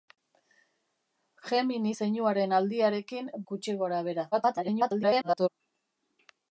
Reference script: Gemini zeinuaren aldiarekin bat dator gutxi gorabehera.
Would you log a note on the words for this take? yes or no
yes